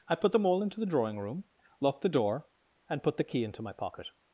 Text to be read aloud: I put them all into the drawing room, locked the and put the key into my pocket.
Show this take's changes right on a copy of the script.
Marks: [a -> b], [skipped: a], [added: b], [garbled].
I put them all into the drawing room, locked the [added: door] and put the key into my pocket.